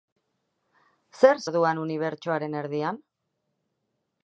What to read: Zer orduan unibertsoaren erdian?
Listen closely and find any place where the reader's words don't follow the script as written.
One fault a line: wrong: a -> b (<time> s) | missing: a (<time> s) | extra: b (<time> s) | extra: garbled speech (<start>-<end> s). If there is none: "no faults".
no faults